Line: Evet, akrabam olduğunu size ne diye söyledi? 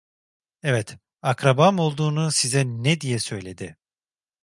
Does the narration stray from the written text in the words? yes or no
no